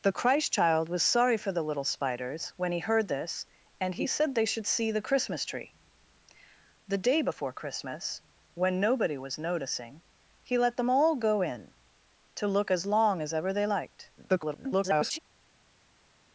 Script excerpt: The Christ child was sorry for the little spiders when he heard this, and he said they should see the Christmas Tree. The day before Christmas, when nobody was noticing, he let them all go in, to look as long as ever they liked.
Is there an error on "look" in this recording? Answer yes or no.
no